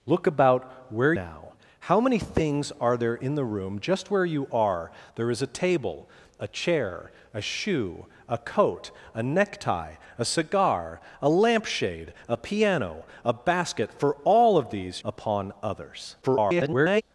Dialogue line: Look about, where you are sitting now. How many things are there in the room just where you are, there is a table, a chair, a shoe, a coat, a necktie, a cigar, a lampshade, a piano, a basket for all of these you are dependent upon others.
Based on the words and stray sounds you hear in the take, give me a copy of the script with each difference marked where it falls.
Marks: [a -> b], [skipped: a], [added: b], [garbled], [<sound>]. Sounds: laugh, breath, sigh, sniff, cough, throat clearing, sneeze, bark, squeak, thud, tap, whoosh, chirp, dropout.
Look about, where [skipped: you are sitting] now. How many things are there in the room just where you are, there is a table, a chair, a shoe, a coat, a necktie, a cigar, a lampshade, a piano, a basket for all of these [skipped: you are dependent] upon others. [garbled]